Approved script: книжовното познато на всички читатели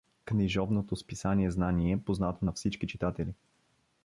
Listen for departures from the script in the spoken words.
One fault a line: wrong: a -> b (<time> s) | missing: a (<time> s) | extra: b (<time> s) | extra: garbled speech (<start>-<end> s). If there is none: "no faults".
extra: списание знание (0.9 s)